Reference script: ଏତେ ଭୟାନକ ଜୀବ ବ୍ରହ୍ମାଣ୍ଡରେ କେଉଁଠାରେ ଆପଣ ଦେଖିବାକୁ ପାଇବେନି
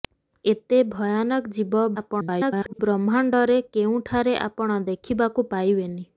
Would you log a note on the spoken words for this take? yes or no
yes